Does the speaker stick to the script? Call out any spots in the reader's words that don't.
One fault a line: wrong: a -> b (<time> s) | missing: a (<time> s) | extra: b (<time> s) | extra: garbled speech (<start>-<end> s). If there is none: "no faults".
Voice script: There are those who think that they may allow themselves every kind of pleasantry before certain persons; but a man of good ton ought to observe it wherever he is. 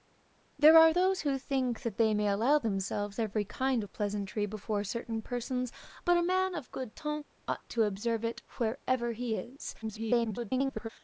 extra: garbled speech (9.8-10.9 s)